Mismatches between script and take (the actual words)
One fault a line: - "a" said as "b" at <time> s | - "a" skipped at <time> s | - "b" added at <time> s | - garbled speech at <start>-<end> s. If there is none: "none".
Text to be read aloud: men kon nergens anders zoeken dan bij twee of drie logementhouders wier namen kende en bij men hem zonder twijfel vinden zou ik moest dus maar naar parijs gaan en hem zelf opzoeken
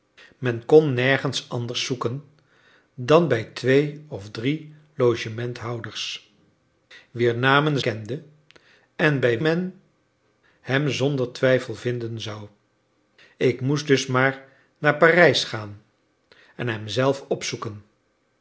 none